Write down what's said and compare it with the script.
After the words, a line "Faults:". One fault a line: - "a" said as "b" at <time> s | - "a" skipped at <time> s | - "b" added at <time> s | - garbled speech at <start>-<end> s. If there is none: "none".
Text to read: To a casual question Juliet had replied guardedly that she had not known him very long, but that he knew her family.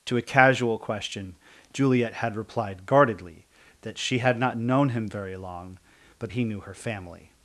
To a casual question Juliet had replied guardedly that she had not known him very long, but he knew her family.
Faults:
- "that" skipped at 6.3 s